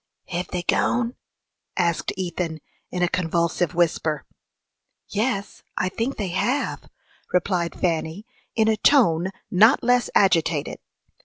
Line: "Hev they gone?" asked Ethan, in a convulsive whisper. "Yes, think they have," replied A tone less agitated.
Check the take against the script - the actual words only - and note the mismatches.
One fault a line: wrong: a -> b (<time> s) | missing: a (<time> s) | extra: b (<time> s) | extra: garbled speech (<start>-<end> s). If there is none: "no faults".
extra: I (5.8 s)
extra: Fanny in (7.8 s)
extra: not (9.5 s)